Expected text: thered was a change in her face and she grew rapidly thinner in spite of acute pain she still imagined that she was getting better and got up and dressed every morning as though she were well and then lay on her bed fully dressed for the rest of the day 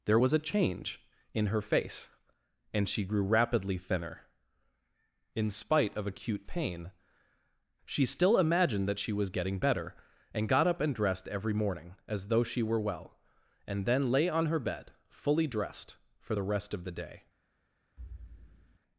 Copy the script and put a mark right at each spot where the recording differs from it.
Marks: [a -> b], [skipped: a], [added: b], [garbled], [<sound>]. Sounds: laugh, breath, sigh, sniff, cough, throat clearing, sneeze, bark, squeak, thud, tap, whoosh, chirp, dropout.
[thered -> there] was a change in her face and she grew rapidly thinner in spite of acute pain she still imagined that she was getting better and got up and dressed every morning as though she were well and then lay on her bed fully dressed for the rest of the day [thud]